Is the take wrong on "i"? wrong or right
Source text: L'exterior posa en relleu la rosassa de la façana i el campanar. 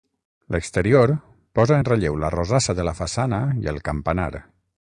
right